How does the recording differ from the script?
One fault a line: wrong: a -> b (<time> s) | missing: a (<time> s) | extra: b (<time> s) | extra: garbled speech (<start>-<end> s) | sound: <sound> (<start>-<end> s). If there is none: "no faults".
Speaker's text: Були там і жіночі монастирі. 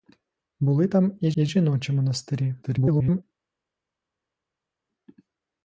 extra: і (1.3 s)
extra: garbled speech (2.6-3.2 s)